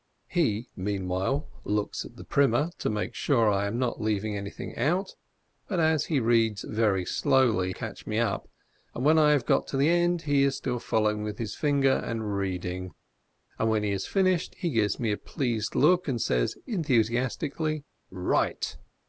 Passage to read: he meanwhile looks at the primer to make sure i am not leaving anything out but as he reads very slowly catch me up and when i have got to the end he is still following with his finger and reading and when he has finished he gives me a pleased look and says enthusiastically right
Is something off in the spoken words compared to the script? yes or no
no